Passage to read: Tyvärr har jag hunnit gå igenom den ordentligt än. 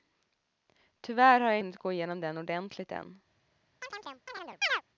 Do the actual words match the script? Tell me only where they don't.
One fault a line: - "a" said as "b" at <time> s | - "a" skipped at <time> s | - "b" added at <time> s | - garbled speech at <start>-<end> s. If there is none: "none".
none